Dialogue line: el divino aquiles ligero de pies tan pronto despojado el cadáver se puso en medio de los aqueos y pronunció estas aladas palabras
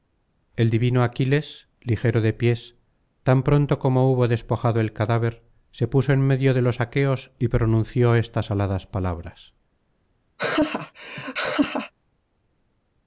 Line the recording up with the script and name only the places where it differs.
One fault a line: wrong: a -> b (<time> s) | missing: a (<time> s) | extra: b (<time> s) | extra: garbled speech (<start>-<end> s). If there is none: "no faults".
extra: como hubo (3.8 s)